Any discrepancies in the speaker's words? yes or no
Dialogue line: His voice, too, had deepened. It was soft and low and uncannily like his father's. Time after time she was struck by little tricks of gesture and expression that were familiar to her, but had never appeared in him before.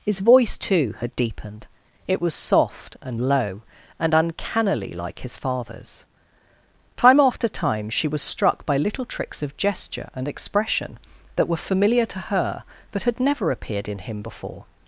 no